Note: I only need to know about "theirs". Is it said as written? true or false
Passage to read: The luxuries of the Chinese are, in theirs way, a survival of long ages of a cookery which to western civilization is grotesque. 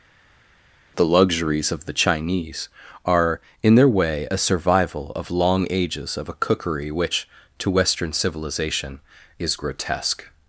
false